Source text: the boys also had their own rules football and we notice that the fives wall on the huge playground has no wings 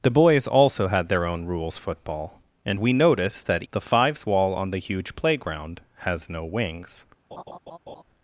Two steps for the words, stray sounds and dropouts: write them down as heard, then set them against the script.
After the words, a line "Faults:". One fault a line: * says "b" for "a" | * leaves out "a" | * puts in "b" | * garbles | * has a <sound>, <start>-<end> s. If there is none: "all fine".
the boys also had their own rules football and we notice that the fives wall on the huge playground has no wings
Faults:
* has a laugh, 7.3-8.0 s